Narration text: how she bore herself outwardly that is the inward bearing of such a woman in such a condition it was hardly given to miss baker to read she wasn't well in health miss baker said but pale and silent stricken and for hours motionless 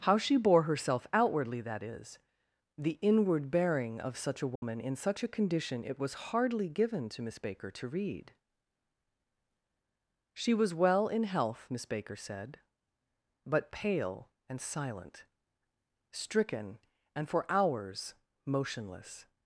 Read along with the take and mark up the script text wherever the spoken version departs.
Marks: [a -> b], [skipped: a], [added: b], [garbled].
how she bore herself outwardly that is the inward bearing of such a woman in such a condition it was hardly given to miss baker to read she [wasn't -> was] well in health miss baker said but pale and silent stricken and for hours motionless